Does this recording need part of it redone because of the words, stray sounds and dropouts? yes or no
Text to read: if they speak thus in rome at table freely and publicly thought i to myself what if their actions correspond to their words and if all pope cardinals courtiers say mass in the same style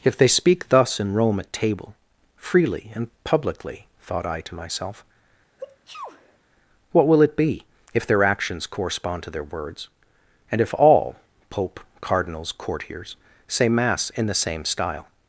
yes